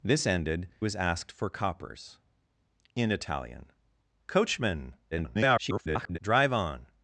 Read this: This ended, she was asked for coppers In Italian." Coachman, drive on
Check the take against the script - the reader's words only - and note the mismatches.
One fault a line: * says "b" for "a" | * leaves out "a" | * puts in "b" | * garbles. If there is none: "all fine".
* leaves out "she"
* garbles